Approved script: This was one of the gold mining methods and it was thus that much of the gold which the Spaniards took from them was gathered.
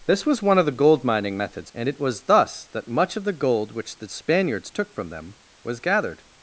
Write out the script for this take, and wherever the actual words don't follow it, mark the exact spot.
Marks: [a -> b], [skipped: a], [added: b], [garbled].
This was one of the gold mining methods and it was thus that much of the gold which the Spaniards took from them was gathered.